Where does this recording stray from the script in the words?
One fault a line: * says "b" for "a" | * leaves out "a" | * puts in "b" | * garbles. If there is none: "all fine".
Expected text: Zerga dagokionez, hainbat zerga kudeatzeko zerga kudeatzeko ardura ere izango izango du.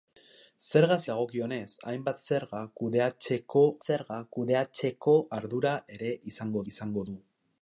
all fine